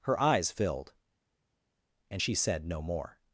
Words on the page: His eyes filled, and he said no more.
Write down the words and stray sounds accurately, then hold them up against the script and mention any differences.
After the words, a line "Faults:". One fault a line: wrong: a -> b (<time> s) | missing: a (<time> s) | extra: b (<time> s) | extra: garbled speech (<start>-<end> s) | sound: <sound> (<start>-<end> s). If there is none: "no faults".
Her eyes filled, and she said no more.
Faults:
wrong: His -> Her (0.1 s)
wrong: he -> she (2.2 s)